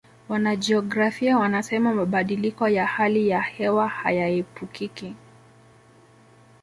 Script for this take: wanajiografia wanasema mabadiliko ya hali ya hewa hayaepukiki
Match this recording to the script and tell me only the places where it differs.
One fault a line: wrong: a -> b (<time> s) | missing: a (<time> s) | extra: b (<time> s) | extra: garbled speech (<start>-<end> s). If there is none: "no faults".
no faults